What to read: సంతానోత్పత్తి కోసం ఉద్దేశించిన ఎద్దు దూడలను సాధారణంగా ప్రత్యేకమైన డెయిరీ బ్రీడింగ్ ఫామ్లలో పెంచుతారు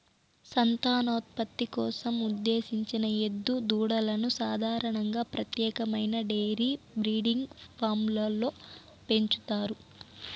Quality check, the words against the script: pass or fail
pass